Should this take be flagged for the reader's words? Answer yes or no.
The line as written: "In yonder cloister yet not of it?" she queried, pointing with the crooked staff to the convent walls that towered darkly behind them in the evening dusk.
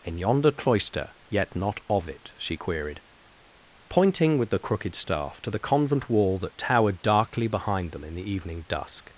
yes